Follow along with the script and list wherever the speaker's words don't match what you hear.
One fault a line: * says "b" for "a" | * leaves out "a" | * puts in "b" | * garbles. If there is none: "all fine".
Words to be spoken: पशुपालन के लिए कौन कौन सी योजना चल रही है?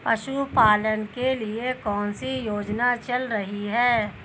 * leaves out "कौन"